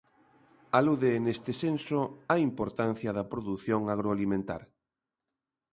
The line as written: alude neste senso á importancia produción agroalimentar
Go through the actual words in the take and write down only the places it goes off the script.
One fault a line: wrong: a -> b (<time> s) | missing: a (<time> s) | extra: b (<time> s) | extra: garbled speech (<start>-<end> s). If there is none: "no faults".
extra: da (3.2 s)